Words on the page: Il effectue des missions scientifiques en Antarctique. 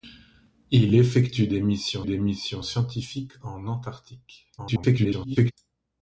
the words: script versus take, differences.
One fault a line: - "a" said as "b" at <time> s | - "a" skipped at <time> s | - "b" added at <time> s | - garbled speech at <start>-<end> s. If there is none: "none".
- "des missions" added at 2.0 s
- garbled speech at 4.6-5.5 s